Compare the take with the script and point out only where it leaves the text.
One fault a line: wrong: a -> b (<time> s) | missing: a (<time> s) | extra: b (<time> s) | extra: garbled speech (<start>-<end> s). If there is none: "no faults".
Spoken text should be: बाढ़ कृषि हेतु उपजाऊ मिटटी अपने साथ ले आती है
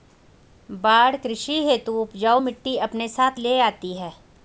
no faults